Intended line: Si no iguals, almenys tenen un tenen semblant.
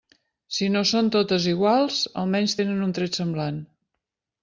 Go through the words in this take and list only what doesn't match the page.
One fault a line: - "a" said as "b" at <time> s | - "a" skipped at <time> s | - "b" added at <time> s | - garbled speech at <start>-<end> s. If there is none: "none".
- "són totes" added at 0.9 s
- "tenen" said as "tret" at 3.0 s